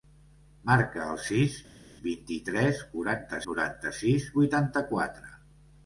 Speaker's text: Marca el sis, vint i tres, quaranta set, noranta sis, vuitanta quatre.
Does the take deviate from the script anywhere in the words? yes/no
yes